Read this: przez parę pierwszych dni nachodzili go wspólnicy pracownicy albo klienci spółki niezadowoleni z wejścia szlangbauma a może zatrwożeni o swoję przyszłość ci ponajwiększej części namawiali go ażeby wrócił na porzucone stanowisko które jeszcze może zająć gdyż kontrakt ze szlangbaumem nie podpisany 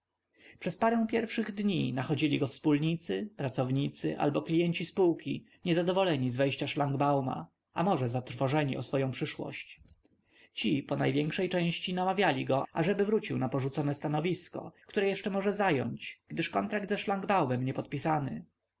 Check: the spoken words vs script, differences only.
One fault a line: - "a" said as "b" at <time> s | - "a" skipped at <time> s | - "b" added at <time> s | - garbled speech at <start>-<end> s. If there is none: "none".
none